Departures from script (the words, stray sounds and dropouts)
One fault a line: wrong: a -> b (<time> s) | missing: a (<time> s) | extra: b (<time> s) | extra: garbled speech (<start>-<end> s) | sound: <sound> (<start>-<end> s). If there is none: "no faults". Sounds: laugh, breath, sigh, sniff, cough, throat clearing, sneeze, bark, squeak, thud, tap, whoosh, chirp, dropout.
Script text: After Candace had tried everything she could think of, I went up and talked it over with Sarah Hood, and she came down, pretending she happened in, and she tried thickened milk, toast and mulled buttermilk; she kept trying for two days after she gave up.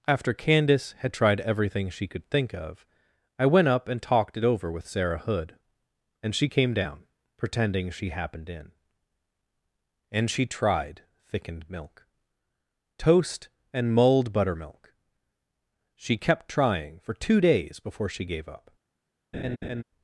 wrong: after -> before (17.8 s)
sound: laugh (19.3-19.8 s)